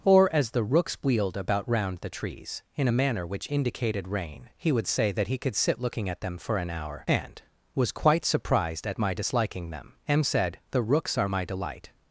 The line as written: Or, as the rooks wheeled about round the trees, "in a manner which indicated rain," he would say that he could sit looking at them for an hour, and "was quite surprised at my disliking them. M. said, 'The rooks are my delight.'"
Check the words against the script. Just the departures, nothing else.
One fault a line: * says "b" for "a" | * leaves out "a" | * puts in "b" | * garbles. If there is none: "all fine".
all fine